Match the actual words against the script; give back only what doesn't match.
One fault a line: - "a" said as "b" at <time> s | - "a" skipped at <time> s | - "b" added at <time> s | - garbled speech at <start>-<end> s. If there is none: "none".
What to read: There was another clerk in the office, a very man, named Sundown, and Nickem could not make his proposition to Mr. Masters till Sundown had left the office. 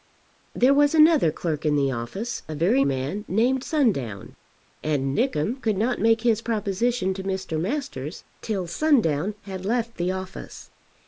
none